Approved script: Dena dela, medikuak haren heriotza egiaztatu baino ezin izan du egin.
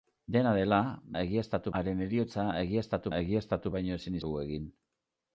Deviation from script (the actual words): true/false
true